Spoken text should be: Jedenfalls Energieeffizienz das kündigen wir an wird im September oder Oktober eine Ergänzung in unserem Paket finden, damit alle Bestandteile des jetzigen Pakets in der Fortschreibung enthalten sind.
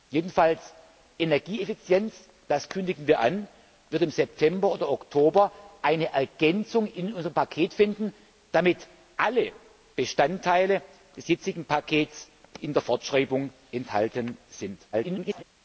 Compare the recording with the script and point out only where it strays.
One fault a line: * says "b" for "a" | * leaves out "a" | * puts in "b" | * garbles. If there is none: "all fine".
* garbles